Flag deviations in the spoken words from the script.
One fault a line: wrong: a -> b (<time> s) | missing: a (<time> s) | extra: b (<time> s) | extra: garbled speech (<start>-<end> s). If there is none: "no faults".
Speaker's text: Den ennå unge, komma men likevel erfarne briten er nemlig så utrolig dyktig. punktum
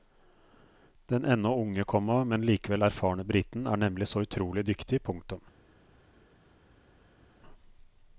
no faults